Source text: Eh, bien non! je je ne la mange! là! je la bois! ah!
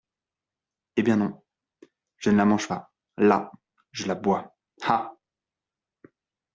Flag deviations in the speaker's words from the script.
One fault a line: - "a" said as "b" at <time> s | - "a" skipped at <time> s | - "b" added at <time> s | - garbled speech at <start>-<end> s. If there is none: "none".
- "je" skipped at 2.3 s
- "pas" added at 2.7 s